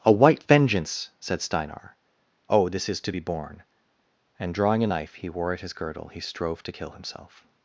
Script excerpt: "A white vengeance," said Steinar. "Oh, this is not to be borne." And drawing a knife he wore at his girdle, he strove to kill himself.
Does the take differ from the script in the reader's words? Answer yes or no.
yes